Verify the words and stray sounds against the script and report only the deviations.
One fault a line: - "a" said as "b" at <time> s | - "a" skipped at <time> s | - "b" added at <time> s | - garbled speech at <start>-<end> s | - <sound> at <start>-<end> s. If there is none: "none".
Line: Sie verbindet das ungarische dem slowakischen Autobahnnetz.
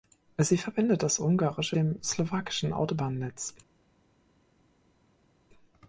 none